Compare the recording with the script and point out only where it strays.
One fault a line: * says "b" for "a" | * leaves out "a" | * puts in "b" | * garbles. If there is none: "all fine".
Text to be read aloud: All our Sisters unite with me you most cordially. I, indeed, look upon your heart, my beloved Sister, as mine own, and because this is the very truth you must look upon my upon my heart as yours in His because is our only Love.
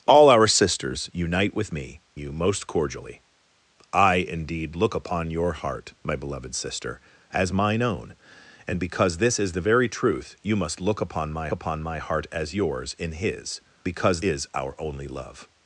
all fine